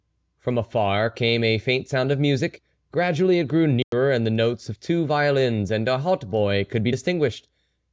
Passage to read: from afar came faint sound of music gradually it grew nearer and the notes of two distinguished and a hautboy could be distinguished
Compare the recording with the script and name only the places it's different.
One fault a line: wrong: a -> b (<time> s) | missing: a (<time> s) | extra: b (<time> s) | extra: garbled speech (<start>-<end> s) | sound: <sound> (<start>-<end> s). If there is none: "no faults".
extra: a (1.4 s)
sound: dropout (3.8-3.9 s)
wrong: distinguished -> violins (5.0 s)